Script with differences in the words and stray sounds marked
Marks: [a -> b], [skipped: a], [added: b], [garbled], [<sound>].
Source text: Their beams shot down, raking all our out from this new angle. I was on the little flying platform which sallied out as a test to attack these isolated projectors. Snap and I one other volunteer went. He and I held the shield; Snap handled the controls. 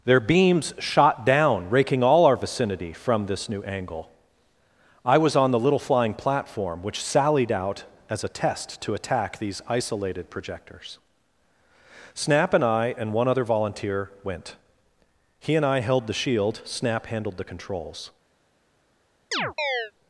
Their beams shot down, raking all our [out -> vicinity] from this new angle. I was on the little flying platform which sallied out as a test to attack these isolated projectors. Snap and I [added: and] one other volunteer went. He and I held the shield; Snap handled the controls. [chirp]